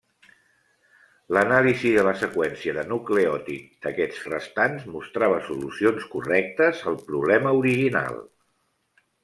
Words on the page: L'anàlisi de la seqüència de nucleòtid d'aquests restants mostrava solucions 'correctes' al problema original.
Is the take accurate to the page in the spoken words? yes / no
yes